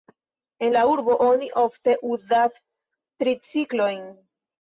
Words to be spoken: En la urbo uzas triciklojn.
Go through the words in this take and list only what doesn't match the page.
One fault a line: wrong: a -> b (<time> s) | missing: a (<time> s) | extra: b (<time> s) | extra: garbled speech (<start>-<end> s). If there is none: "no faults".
extra: oni ofte (1.3 s)